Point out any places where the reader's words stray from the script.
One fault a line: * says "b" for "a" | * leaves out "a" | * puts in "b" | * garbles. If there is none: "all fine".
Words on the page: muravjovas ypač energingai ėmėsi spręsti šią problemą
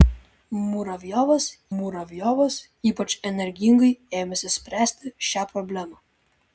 * puts in "muravjovas"